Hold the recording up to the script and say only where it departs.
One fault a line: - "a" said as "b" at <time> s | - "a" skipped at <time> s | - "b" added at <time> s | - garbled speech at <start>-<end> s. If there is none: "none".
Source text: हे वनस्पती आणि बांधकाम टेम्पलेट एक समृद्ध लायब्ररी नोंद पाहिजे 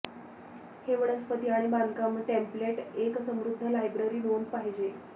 none